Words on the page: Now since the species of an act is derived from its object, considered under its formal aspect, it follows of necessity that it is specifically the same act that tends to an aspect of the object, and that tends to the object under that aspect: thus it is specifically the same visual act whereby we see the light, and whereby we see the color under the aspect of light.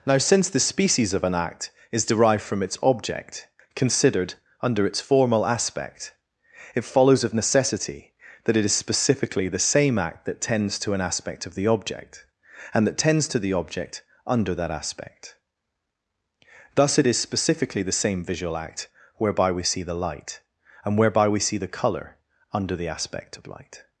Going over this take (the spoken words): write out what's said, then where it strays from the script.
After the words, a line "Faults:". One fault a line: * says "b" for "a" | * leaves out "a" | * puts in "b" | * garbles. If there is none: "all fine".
Now since the species of an act is derived from its object, considered under its formal aspect, it follows of necessity that it is specifically the same act that tends to an aspect of the object, and that tends to the object under that aspect: thus it is specifically the same visual act whereby we see the light, and whereby we see the color under the aspect of light.
Faults:
all fine